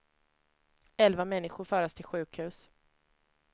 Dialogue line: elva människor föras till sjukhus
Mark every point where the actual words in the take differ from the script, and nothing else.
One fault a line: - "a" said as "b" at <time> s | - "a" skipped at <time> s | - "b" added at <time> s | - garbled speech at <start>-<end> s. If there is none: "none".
none